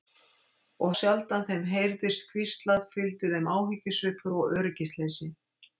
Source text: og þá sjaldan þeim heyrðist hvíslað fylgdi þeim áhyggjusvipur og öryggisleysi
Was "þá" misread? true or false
true